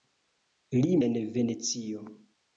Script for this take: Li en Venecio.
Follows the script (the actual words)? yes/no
yes